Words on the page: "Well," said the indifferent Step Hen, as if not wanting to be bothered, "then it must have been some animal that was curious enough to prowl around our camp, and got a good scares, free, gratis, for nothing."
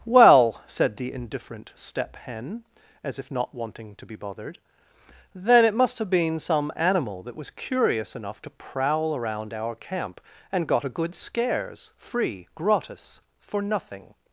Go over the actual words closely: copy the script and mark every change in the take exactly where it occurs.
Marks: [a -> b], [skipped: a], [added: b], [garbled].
"Well," said the indifferent Step Hen, as if not wanting to be bothered, "then it must have been some animal that was curious enough to prowl around our camp, and got a good scares, free, gratis, for nothing."